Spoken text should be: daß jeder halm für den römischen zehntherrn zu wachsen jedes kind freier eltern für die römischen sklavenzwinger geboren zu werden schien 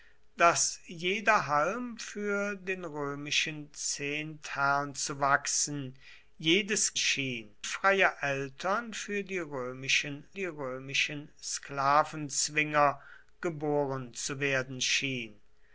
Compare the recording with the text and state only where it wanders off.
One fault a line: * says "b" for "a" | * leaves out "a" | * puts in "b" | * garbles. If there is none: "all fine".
* says "schien" for "kind"
* puts in "die römischen"